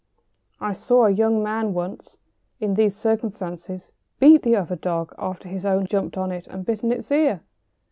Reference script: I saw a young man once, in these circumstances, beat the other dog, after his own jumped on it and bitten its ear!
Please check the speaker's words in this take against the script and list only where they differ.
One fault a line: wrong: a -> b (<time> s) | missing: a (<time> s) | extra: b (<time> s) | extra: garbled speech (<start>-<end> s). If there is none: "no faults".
no faults